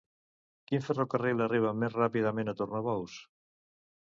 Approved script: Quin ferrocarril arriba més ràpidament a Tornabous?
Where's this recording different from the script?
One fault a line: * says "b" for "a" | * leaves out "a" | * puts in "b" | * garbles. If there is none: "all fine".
all fine